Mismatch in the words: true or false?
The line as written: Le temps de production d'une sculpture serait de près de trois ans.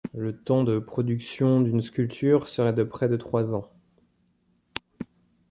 false